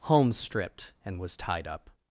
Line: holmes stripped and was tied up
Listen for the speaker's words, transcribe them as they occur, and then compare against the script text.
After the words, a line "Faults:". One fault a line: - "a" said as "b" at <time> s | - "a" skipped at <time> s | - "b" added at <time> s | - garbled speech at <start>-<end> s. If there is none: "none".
holmes stripped and was tied up
Faults:
none